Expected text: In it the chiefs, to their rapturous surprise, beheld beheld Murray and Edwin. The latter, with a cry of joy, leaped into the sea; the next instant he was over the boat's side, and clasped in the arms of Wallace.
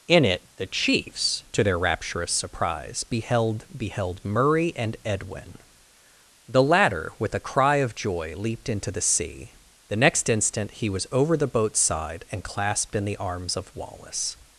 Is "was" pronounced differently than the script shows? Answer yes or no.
no